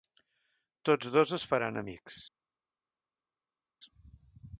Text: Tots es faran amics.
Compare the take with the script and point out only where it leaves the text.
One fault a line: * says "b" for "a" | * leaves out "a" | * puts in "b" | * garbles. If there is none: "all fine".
* puts in "dos"